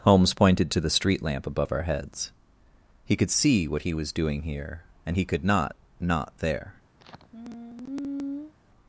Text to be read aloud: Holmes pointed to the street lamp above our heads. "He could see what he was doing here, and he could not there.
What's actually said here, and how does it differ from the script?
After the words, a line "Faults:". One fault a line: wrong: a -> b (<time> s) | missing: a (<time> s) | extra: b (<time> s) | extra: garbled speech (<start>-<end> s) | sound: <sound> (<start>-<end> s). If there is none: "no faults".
Holmes pointed to the street lamp above our heads. "He could see what he was doing here, and he could not not there.
Faults:
extra: not (6.0 s)
sound: sigh (7.0-8.5 s)